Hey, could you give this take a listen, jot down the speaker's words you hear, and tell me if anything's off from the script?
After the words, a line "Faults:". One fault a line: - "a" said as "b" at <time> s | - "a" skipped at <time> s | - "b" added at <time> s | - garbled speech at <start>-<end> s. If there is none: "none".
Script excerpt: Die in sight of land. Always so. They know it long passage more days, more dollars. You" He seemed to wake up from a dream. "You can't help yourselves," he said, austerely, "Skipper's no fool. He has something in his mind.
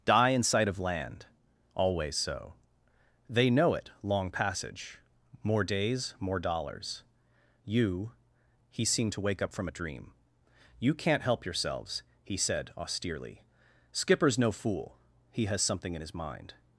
Die in sight of land. Always so. They know it long passage more days, more dollars. You" He seemed to wake up from a dream. "You can't help yourselves," he said, austerely, "Skipper's no fool. He has something in his mind.
Faults:
none